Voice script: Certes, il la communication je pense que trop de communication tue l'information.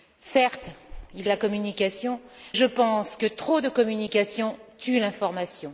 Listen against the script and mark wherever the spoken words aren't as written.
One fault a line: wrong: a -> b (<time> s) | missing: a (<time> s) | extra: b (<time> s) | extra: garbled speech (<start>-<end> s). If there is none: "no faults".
no faults